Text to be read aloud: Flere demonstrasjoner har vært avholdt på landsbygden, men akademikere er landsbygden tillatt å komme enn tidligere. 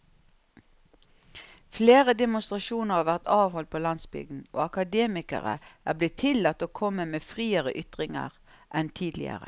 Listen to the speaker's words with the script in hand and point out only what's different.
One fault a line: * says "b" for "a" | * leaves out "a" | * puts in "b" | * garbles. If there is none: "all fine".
* says "og" for "men"
* says "blitt" for "landsbygden"
* puts in "med friere ytringer"